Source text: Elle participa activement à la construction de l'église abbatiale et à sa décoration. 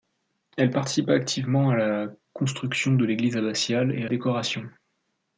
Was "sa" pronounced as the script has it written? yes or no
no